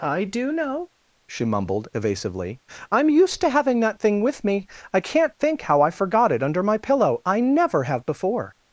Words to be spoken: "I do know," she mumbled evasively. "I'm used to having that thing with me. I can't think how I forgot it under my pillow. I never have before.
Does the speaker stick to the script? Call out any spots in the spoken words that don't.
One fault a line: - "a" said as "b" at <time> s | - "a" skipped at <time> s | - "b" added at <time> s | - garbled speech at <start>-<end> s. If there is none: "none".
none